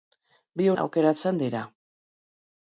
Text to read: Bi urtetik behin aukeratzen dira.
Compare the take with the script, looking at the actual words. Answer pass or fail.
fail